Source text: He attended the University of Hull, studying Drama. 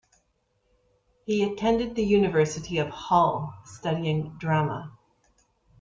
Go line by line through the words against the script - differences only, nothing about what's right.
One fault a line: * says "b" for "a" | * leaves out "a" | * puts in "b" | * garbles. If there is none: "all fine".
all fine